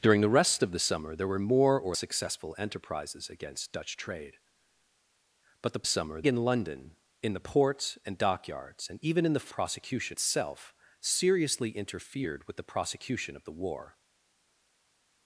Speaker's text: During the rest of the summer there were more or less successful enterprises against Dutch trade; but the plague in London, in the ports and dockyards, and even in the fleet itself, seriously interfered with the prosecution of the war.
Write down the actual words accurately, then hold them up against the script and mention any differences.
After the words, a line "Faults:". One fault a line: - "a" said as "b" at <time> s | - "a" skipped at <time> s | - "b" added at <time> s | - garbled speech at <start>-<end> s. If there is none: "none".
During the rest of the summer there were more or successful enterprises against Dutch trade; but the summer in London, in the ports and dockyards, and even in the prosecution itself, seriously interfered with the prosecution of the war.
Faults:
- "less" skipped at 1.9 s
- "plague" said as "summer" at 5.8 s
- "fleet" said as "prosecution" at 9.5 s